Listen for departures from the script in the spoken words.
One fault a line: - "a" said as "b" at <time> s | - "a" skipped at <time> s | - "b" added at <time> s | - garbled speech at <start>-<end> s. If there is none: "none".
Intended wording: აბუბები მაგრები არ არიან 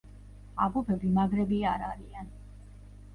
none